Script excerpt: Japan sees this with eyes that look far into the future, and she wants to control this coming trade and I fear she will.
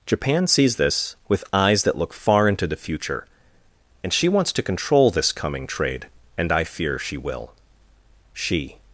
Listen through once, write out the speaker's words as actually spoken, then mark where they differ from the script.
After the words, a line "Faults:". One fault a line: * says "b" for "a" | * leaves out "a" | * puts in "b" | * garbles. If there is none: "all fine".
Japan sees this with eyes that look far into the future, and she wants to control this coming trade and I fear she will. She
Faults:
* puts in "She"